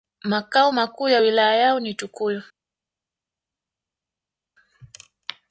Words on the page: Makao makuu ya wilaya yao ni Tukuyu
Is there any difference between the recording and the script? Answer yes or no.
no